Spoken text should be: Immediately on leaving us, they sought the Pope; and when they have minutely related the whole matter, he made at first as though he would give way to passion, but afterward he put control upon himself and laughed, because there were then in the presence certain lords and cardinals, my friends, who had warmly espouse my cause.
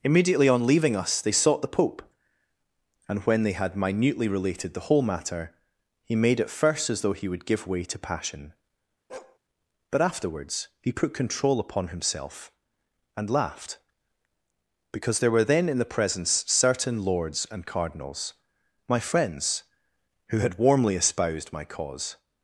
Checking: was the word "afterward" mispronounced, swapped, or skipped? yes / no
yes